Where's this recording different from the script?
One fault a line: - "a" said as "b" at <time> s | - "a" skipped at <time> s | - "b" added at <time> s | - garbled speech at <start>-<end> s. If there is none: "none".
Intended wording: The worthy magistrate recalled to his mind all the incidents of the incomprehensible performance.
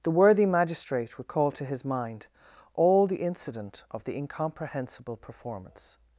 - "incidents" said as "incident" at 3.2 s